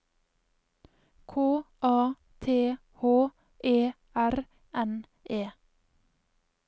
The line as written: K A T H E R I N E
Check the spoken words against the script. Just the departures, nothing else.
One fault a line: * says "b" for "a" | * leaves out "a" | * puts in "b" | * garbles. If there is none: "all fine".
* leaves out "I"